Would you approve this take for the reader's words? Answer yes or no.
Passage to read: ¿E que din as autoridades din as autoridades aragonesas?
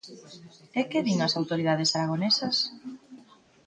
no